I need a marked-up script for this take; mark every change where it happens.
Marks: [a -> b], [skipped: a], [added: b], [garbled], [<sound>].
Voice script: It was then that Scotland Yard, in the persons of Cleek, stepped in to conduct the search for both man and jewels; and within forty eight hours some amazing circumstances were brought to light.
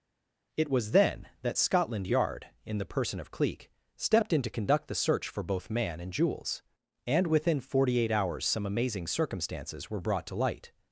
It was then that Scotland Yard, in the [persons -> person] of Cleek, stepped in to conduct the search for both man and jewels; and within forty eight hours some amazing circumstances were brought to light.